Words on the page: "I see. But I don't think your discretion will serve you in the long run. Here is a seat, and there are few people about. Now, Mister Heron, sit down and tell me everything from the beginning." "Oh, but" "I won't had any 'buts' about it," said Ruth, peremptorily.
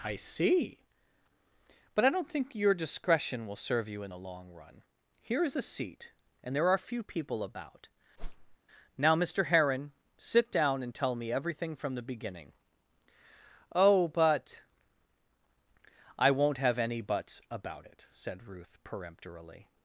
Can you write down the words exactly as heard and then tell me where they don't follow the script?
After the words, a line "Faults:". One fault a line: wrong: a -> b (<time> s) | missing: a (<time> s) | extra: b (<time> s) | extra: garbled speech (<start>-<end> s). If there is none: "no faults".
"I see. But I don't think your discretion will serve you in the long run. Here is a seat, and there are few people about. Now, Mister Heron, sit down and tell me everything from the beginning." "Oh, but" "I won't have any 'buts' about it," said Ruth, peremptorily.
Faults:
wrong: had -> have (16.6 s)